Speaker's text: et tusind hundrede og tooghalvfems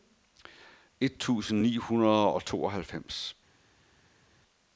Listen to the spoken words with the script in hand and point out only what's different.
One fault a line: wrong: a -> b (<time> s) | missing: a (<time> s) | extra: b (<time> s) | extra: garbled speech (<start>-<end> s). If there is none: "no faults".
extra: ni (1.6 s)